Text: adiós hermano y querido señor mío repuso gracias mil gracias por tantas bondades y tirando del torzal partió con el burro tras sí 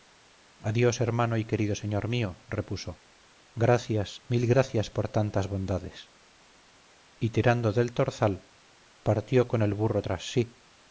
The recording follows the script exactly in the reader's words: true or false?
true